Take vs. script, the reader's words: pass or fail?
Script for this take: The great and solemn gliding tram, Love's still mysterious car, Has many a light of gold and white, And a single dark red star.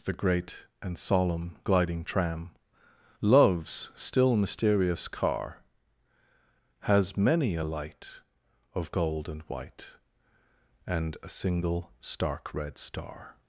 fail